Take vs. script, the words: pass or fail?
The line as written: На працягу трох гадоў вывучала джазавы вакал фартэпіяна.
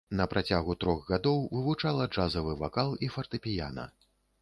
fail